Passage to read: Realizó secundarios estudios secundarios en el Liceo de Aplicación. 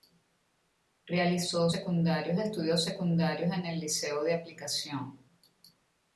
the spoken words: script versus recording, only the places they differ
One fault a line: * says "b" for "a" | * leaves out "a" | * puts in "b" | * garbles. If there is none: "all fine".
all fine